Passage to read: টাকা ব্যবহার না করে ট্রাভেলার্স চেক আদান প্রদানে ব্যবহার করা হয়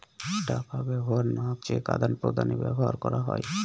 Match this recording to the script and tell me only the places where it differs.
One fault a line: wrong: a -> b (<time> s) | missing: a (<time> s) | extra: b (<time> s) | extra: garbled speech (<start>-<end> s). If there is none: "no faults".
missing: করে ট্রাভেলার্স (1.5 s)